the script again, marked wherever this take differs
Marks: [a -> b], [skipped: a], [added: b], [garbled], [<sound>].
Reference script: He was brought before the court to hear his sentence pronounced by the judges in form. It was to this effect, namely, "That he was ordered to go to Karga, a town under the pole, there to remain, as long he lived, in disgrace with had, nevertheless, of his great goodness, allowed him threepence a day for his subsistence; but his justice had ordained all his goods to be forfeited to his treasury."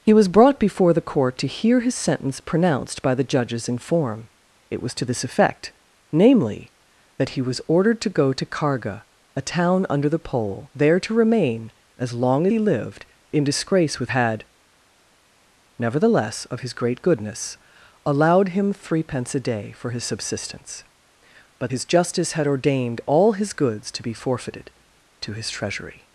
He was brought before the court to hear his sentence pronounced by the judges in form. It was to this effect, namely, "That he was ordered to go to Karga, a town under the pole, there to remain, as long he lived, in disgrace with had, nevertheless, of his great goodness, allowed him threepence a day for his subsistence; but his justice had ordained all his goods to be forfeited to his treasury."